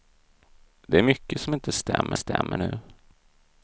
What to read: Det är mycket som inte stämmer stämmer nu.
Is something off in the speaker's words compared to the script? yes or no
no